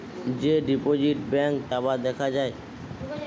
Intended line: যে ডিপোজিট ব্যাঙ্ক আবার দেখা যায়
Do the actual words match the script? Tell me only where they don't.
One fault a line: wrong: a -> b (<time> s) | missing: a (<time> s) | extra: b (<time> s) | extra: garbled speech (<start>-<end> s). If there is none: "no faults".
no faults